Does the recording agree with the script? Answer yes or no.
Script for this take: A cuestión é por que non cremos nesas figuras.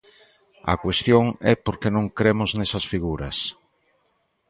yes